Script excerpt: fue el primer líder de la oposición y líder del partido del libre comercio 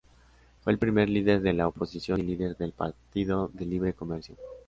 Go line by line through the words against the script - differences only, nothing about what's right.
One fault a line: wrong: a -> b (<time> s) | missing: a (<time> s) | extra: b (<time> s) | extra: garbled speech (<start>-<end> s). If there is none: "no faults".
no faults